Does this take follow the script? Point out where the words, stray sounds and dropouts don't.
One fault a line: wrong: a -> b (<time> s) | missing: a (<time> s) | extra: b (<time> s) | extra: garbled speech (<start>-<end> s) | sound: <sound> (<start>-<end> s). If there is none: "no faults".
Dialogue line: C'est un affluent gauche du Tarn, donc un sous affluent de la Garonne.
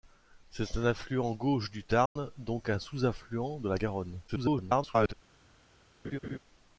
sound: dropout (2.1-2.2 s)
extra: garbled speech (4.3-5.1 s)
sound: laugh (6.0-6.4 s)